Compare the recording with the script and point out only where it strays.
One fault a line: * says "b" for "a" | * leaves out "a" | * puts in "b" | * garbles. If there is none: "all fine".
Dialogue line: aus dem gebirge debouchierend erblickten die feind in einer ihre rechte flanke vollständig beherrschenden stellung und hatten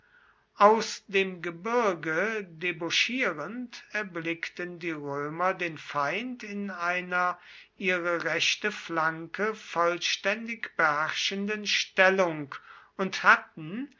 * puts in "römer den"